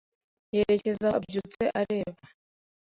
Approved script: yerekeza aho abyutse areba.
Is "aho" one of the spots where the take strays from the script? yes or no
yes